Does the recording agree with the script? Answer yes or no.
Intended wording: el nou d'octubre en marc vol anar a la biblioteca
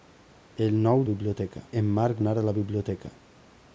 no